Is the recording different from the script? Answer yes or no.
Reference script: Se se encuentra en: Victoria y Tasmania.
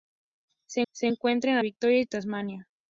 no